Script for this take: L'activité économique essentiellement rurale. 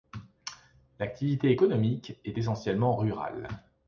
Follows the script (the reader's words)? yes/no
no